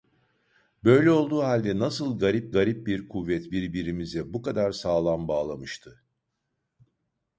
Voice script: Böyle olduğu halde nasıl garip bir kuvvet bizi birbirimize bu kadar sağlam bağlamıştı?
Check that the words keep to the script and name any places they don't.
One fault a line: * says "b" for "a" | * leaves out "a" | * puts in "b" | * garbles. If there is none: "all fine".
* puts in "garip"
* leaves out "bizi"